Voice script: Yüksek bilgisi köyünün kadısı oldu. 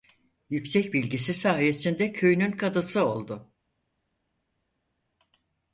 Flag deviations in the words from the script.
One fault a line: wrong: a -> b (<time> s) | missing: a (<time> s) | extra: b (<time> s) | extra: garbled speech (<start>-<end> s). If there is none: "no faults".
extra: sayesinde (1.3 s)